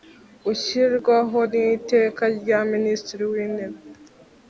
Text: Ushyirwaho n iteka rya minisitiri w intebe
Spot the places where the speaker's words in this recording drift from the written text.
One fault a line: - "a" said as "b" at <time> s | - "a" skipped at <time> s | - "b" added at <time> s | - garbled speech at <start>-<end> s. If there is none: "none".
none